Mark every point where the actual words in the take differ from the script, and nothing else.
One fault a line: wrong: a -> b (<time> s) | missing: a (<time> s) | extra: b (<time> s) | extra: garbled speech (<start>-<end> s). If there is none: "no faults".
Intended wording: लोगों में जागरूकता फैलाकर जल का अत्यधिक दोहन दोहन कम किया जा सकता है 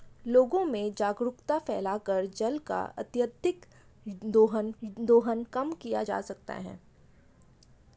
no faults